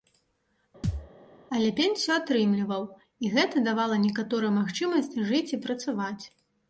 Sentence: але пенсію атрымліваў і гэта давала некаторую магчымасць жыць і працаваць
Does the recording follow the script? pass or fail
pass